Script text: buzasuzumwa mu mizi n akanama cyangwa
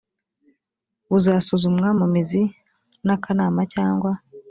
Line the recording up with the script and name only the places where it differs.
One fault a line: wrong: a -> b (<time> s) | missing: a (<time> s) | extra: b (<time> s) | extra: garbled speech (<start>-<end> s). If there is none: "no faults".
no faults